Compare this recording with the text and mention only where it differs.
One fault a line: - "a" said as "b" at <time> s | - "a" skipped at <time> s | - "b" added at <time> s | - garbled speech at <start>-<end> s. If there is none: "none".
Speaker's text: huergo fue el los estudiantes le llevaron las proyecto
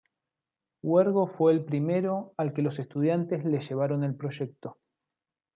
- "primero al que" added at 1.6 s
- "las" said as "el" at 4.0 s